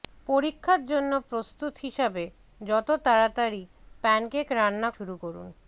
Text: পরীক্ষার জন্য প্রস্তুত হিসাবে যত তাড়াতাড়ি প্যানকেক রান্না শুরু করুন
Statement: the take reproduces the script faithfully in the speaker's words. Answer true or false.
true